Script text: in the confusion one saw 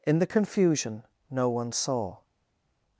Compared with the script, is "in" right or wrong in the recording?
right